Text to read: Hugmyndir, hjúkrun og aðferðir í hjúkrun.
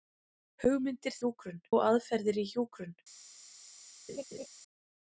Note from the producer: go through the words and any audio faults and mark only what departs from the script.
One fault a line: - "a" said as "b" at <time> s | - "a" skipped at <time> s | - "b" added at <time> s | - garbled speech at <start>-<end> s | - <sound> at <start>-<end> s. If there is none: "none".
- laugh at 4.1-4.5 s